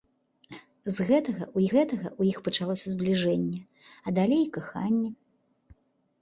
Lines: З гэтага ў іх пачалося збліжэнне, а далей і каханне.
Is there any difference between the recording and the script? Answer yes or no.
yes